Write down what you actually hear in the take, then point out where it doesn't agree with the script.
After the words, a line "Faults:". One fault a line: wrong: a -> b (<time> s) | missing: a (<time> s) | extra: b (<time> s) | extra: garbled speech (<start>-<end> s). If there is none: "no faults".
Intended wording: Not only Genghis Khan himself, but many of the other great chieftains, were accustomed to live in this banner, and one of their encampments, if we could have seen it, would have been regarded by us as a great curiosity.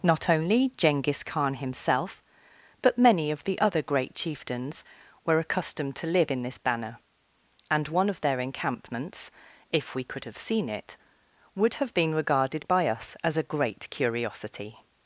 Not only Genghis Khan himself, but many of the other great chieftains, were accustomed to live in this banner, and one of their encampments, if we could have seen it, would have been regarded by us as a great curiosity.
Faults:
no faults